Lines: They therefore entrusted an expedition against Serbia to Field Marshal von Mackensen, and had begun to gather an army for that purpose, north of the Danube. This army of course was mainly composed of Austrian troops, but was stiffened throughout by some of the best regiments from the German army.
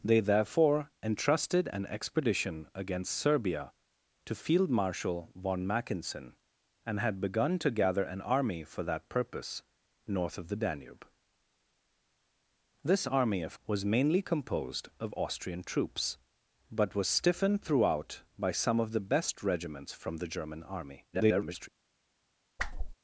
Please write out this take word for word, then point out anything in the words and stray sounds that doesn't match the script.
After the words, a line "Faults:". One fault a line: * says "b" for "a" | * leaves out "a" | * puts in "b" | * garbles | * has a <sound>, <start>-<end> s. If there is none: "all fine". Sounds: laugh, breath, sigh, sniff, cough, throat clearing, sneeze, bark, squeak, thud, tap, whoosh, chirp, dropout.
They therefore entrusted an expedition against Serbia to Field Marshal von Mackensen, and had begun to gather an army for that purpose, north of the Danube. This army of was mainly composed of Austrian troops, but was stiffened throughout by some of the best regiments from the German army. [garbled]
Faults:
* leaves out "course"
* garbles
* has a whoosh, 22.6-23.0 s